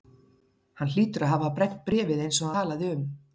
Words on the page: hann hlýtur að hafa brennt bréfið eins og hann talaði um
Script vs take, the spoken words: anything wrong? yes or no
yes